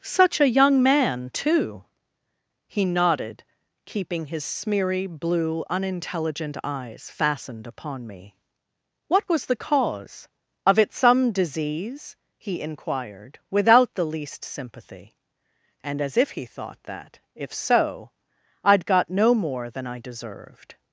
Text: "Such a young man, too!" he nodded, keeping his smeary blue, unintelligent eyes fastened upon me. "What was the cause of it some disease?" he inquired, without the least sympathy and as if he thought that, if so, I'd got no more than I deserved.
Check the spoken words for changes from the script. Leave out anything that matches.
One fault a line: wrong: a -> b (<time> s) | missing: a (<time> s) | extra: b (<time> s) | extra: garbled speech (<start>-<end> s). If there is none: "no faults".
no faults